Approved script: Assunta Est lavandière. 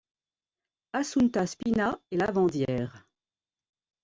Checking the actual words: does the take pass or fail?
fail